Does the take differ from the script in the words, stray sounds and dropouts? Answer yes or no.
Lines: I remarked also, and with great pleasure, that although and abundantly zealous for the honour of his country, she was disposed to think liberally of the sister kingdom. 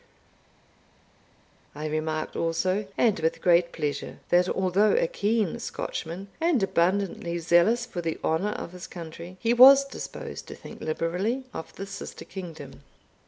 yes